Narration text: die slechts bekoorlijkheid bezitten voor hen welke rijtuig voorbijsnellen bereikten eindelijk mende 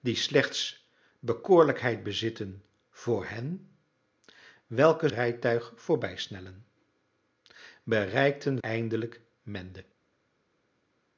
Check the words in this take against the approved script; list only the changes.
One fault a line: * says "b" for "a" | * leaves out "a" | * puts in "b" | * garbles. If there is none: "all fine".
all fine